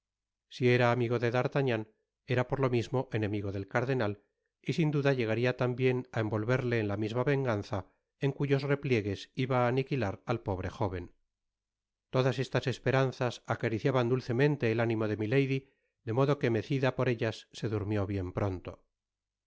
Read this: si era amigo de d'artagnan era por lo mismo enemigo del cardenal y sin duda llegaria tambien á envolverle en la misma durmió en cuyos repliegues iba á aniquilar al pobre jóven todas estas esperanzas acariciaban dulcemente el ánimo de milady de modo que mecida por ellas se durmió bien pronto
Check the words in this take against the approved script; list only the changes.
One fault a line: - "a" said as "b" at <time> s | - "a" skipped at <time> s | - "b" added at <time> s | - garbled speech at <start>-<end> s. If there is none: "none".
- "durmió" said as "venganza" at 7.3 s